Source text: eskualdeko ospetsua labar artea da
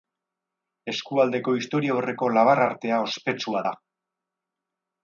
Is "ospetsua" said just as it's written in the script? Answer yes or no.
no